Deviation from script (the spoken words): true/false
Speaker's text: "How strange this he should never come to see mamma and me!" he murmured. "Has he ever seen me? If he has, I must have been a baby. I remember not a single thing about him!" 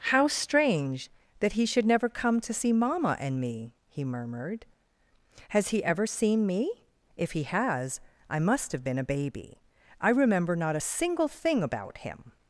true